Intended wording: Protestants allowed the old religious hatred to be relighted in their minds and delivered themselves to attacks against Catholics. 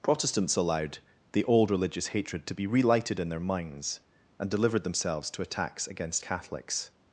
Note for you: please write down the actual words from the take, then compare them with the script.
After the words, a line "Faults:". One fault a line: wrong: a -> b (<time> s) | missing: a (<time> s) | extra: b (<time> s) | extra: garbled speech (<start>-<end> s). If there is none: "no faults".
Protestants allowed the old religious hatred to be relighted in their minds and delivered themselves to attacks against Catholics.
Faults:
no faults